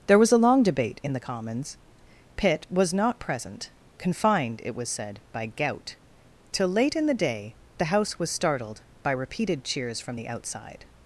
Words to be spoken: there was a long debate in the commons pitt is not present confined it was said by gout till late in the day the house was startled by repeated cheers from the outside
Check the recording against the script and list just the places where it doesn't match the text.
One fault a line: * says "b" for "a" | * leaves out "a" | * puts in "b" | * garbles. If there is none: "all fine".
* says "was" for "is"